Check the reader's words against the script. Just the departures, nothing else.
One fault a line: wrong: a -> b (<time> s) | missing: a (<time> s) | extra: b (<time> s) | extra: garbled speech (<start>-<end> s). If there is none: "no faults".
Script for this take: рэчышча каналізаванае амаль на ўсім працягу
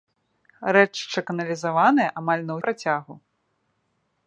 missing: ўсім (2.6 s)